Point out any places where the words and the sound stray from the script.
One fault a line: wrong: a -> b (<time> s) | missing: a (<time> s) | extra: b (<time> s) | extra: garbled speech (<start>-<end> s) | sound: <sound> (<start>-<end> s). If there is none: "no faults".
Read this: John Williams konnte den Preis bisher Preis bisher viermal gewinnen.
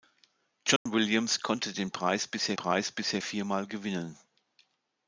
sound: dropout (0.8-0.9 s)